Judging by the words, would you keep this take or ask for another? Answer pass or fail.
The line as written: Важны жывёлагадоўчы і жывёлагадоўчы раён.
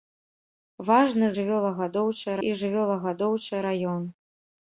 pass